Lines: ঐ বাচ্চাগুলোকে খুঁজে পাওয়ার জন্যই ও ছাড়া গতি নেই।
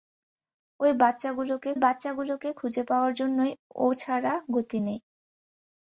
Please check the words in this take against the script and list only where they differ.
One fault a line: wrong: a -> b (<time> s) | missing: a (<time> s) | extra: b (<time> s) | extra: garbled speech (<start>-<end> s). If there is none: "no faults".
extra: বাচ্চাগুলোকে (1.8 s)